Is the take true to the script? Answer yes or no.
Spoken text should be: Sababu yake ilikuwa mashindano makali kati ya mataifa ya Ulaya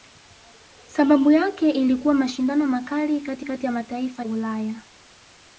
no